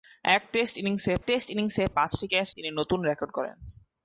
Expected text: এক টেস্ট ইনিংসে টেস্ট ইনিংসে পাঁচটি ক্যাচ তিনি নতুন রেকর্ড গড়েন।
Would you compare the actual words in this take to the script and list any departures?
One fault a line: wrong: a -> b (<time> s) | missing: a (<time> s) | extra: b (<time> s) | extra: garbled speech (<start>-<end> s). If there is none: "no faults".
no faults